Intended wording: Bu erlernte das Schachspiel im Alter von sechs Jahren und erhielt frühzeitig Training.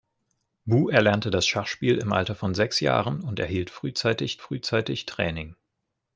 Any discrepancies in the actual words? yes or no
yes